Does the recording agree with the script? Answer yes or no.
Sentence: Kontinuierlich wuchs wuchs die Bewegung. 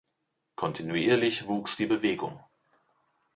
no